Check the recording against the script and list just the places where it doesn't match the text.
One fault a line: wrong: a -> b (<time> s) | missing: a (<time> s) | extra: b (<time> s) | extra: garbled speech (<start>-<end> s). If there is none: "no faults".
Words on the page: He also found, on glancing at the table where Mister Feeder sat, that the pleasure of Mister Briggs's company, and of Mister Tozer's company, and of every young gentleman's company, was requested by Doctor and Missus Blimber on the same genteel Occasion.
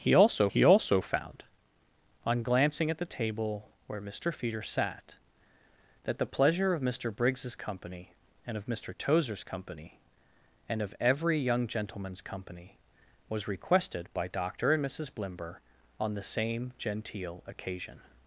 extra: he also (0.5 s)